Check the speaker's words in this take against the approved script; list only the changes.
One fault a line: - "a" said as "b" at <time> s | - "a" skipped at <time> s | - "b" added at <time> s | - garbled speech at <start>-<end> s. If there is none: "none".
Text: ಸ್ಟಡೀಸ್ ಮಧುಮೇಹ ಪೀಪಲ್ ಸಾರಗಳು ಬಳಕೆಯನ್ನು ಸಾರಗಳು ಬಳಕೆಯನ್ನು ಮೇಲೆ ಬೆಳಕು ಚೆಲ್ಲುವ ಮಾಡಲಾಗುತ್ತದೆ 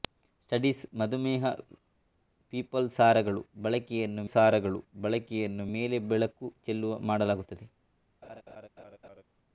none